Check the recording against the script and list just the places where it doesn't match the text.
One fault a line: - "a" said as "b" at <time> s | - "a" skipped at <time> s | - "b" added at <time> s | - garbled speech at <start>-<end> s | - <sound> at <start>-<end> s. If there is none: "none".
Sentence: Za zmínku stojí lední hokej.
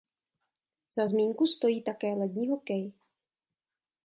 - "také" added at 1.8 s